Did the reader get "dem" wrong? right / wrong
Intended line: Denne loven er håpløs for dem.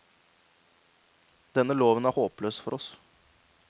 wrong